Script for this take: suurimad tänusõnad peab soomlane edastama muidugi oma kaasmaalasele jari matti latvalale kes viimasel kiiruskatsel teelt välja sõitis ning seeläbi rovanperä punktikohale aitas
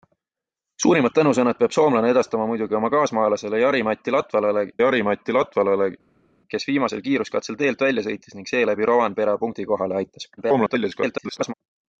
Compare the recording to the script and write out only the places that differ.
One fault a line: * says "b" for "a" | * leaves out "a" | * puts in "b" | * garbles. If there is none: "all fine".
* puts in "jari matti latvalale"
* garbles